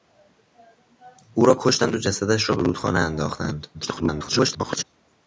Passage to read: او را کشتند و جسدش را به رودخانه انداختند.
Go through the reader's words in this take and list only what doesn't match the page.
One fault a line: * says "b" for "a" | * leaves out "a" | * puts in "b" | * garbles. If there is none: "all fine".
* garbles